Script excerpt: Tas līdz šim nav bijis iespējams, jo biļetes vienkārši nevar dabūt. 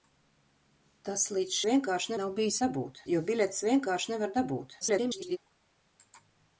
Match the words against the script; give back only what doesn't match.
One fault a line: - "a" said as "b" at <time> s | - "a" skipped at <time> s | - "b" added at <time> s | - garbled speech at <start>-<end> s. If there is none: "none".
- "šim" said as "vienkārši" at 1.7 s
- "iespējams" said as "dabūt" at 2.6 s
- garbled speech at 4.8-5.4 s